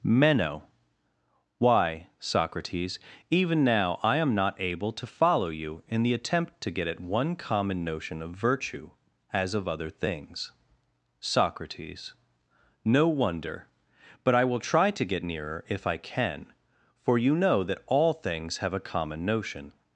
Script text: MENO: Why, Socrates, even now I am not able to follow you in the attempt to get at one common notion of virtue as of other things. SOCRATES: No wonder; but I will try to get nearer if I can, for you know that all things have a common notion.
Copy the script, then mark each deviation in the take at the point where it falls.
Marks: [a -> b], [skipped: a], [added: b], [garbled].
MENO: Why, Socrates, even now I am not able to follow you in the attempt to get at one common notion of virtue as of other things. SOCRATES: No wonder; but I will try to get nearer if I can, for you know that all things have a common notion.